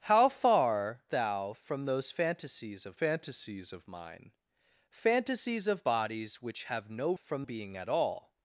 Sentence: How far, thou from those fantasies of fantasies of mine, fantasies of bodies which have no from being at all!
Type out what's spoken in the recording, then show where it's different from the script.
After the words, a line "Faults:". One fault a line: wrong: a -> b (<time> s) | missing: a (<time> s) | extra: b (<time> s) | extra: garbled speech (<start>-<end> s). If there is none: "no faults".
How far, thou from those fantasies of fantasies of mine, fantasies of bodies which have no from being at all!
Faults:
no faults